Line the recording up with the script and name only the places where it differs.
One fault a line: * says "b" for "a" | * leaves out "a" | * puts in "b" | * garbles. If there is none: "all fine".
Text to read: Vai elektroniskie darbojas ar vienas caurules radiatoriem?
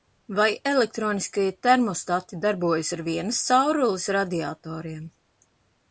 * puts in "termostati"